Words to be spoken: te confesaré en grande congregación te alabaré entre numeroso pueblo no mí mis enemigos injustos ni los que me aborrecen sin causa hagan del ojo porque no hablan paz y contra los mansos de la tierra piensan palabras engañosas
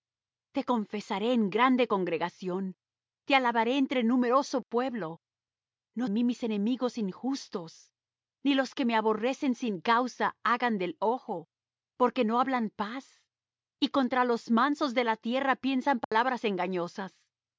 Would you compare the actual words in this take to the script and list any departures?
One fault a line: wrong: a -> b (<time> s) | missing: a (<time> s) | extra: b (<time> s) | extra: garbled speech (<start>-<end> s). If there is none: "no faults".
no faults